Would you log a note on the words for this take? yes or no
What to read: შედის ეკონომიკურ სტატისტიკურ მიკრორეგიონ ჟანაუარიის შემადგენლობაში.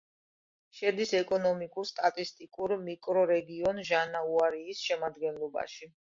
no